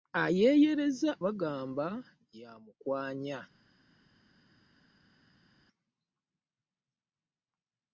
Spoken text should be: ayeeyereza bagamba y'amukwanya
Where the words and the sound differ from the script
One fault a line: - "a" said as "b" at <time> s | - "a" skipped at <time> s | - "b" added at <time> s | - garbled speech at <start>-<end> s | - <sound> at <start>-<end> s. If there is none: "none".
none